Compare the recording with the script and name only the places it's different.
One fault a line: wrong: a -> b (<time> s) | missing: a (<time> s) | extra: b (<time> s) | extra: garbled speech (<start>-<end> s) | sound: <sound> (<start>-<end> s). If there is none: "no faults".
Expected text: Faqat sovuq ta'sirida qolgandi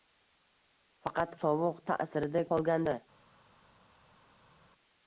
no faults